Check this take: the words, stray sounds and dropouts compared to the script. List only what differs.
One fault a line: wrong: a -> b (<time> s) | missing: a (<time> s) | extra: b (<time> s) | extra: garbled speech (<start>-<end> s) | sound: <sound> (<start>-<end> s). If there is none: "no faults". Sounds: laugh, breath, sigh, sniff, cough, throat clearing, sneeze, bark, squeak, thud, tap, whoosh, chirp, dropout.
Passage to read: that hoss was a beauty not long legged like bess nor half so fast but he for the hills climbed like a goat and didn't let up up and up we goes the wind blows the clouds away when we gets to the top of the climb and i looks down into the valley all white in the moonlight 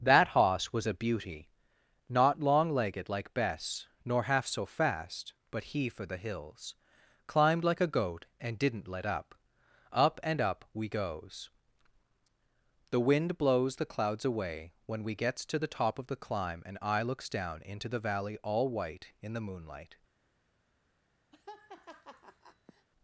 sound: laugh (21.3-22.9 s)